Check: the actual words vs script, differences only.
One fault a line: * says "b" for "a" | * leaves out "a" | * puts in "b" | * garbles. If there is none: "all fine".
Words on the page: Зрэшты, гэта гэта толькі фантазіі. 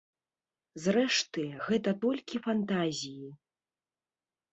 * leaves out "гэта"